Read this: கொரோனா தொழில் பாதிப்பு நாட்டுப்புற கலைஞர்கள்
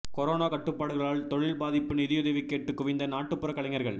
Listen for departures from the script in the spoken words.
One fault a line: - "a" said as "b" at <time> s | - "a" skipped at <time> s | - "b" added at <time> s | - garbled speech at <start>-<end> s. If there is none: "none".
- "கட்டுப்பாடுகளால்" added at 0.4 s
- "நிதியுதவி கேட்டு குவிந்த" added at 1.9 s